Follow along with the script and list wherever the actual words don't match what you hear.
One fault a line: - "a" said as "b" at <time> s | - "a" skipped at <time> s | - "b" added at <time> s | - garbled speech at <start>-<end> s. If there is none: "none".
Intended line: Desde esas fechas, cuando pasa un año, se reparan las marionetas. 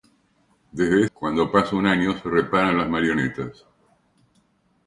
- "esas fechas" skipped at 1.1 s